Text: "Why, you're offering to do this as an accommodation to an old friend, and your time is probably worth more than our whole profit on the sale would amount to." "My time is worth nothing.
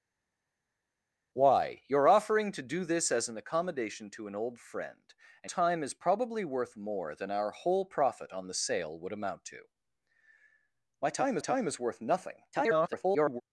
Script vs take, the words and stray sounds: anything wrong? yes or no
yes